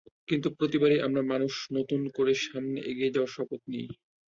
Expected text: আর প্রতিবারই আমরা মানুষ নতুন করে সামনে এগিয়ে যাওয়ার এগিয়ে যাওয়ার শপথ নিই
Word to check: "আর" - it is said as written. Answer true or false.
false